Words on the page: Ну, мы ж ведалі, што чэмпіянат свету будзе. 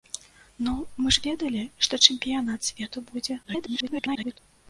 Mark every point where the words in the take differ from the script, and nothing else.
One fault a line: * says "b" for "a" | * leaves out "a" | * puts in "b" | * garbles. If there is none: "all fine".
* garbles